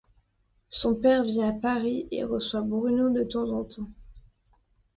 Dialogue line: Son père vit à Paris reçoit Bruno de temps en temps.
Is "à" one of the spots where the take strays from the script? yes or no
no